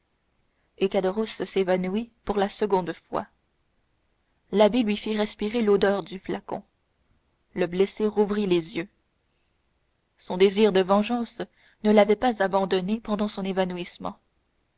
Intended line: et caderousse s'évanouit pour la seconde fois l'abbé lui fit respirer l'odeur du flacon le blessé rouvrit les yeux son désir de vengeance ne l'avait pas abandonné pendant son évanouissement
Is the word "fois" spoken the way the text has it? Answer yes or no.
yes